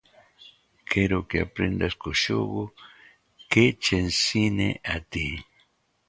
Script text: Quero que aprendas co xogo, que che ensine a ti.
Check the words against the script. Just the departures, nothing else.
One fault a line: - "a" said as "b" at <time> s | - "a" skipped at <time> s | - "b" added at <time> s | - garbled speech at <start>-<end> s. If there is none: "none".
none